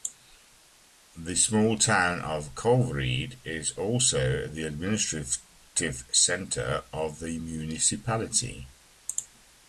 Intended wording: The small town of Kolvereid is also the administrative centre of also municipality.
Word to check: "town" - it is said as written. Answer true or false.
true